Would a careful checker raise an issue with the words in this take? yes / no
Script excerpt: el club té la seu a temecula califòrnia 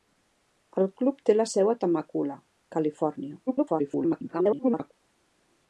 yes